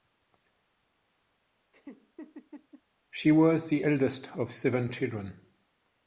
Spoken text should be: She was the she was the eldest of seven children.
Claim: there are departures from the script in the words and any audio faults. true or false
true